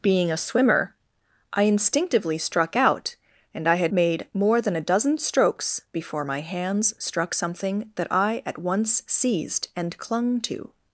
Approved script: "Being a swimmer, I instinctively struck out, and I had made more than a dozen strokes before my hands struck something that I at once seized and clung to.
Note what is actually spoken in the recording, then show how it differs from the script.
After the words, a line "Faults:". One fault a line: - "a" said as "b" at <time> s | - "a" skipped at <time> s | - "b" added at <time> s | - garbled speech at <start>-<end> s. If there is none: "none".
"Being a swimmer, I instinctively struck out, and I had made more than a dozen strokes before my hands struck something that I at once seized and clung to.
Faults:
none